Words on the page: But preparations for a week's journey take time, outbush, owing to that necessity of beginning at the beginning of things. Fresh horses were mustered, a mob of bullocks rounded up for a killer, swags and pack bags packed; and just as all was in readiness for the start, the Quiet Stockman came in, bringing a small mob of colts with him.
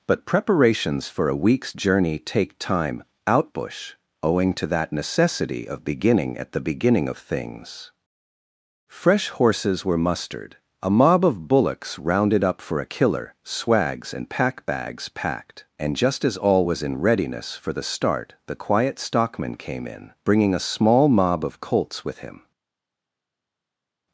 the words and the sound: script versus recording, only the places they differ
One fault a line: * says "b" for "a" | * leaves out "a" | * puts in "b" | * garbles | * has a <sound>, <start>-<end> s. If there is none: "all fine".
all fine